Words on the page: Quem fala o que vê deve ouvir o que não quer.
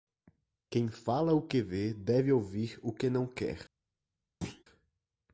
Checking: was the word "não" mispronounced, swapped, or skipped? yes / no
no